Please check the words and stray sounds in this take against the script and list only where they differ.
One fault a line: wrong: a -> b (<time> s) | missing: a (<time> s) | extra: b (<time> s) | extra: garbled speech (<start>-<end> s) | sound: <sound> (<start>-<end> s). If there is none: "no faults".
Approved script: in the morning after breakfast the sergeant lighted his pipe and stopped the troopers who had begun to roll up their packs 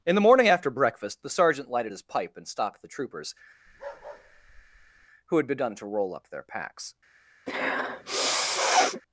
sound: bark (3.7-5.1 s)
sound: sniff (7.5-9.0 s)